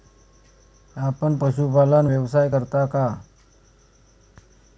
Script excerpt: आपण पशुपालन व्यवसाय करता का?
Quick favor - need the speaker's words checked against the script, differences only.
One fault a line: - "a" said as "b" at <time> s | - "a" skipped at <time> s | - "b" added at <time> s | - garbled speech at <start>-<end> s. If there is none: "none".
none